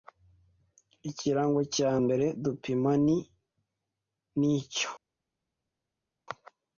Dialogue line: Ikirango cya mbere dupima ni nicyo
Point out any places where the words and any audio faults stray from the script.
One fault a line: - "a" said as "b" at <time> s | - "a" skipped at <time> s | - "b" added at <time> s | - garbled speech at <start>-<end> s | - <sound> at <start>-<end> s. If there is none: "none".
none